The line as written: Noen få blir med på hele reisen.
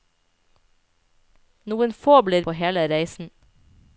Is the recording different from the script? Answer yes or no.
yes